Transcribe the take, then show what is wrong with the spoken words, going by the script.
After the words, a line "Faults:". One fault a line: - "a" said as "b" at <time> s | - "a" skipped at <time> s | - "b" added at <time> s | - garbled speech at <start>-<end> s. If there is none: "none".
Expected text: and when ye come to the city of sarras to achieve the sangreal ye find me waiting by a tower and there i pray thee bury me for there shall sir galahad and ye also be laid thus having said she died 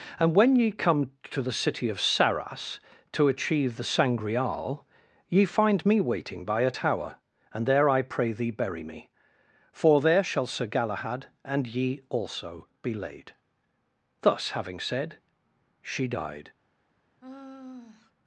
and when ye come to the city of sarras to achieve the sangreal ye find me waiting by a tower and there i pray thee bury me for there shall sir galahad and ye also be laid thus having said she died
Faults:
none